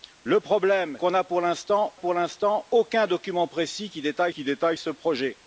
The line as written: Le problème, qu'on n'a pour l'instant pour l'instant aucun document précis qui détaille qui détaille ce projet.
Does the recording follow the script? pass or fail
pass